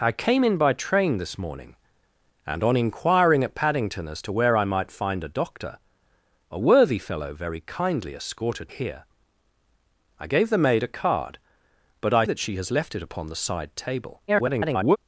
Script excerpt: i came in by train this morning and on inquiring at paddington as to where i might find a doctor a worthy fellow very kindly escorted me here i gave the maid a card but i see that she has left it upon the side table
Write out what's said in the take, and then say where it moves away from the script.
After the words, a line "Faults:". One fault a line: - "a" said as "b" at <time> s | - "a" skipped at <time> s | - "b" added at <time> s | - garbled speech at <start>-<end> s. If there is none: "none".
i came in by train this morning and on inquiring at paddington as to where i might find a doctor a worthy fellow very kindly escorted here i gave the maid a card but i that she has left it upon the side table [garbled]
Faults:
- "me" skipped at 8.7 s
- "see" skipped at 12.2 s
- garbled speech at 14.3-15.0 s